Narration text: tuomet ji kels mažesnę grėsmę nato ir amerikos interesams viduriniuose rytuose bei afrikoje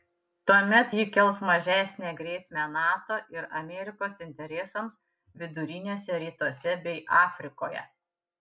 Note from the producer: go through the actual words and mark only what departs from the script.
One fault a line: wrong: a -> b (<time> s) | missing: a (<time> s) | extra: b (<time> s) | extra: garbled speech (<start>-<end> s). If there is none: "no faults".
no faults